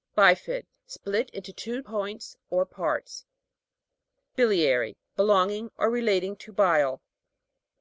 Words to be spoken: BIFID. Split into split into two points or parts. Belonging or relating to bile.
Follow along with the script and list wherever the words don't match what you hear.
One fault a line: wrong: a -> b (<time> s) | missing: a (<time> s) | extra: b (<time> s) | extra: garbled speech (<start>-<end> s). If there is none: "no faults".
missing: split into (1.5 s)
extra: BILIA'RY (4.3 s)